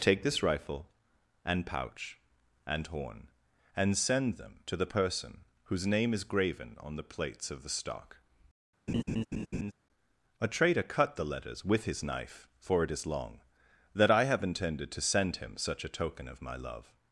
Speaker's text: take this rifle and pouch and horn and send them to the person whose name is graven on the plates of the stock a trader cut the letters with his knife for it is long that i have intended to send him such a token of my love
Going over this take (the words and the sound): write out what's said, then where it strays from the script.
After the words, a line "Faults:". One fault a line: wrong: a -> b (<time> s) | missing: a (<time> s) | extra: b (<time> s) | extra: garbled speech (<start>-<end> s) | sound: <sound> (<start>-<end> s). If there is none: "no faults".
take this rifle and pouch and horn and send them to the person whose name is graven on the plates of the stock a trader cut the letters with his knife for it is long that i have intended to send him such a token of my love
Faults:
sound: laugh (8.9-9.7 s)